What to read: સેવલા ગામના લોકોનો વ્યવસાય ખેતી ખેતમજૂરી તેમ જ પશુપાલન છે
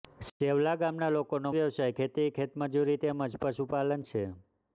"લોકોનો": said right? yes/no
yes